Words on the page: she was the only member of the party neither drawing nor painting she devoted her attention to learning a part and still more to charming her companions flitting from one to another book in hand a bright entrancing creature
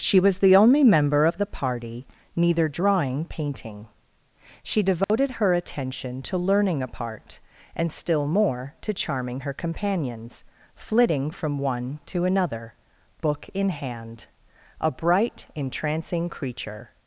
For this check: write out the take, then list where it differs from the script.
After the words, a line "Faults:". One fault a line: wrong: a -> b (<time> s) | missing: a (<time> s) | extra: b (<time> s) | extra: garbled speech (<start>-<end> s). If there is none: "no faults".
she was the only member of the party neither drawing painting she devoted her attention to learning a part and still more to charming her companions flitting from one to another book in hand a bright entrancing creature
Faults:
missing: nor (3.3 s)